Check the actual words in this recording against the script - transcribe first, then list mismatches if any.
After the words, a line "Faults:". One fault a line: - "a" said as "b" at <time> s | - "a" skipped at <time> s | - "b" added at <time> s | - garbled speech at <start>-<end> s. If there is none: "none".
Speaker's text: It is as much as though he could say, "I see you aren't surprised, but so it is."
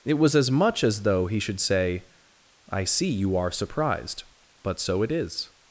It was as much as though he should say, "I see you are surprised, but so it is."
Faults:
- "is" said as "was" at 0.1 s
- "could" said as "should" at 1.4 s
- "aren't" said as "are" at 3.4 s